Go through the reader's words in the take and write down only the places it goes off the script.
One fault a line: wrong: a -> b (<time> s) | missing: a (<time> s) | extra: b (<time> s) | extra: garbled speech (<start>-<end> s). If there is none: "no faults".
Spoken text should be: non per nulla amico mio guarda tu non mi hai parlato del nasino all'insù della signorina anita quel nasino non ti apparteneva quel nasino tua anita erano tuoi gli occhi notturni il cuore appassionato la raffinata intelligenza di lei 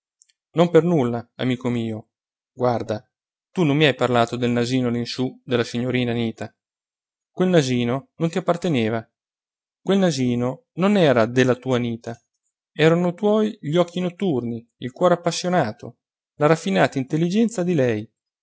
extra: non era della (10.7 s)